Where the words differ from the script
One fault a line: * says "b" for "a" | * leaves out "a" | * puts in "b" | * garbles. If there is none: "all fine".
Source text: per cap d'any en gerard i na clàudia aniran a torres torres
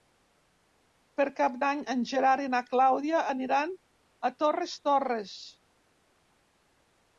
all fine